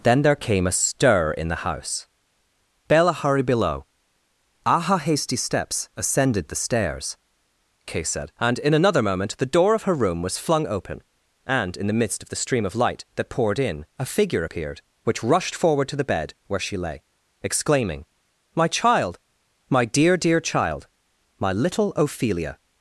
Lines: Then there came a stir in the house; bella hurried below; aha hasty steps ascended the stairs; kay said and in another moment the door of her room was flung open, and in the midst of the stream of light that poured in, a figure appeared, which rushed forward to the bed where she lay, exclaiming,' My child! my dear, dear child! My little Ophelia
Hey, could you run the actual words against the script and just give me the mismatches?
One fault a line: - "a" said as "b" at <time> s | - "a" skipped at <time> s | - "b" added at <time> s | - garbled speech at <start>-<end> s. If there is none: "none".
none